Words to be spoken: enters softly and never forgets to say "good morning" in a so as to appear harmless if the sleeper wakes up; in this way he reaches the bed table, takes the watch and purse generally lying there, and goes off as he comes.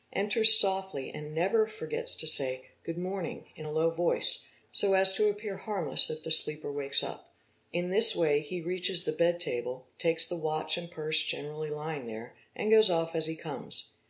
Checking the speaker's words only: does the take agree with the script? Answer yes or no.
no